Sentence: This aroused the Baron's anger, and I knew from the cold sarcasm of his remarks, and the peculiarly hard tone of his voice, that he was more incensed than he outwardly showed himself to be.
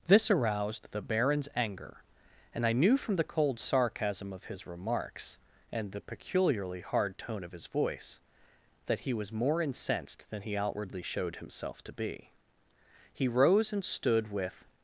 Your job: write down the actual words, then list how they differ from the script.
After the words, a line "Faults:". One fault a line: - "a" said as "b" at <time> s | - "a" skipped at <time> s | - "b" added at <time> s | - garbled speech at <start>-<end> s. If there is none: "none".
This aroused the Baron's anger, and I knew from the cold sarcasm of his remarks, and the peculiarly hard tone of his voice, that he was more incensed than he outwardly showed himself to be. He rose and stood with
Faults:
- "He rose and stood with" added at 13.1 s